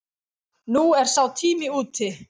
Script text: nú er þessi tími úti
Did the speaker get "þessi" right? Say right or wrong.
wrong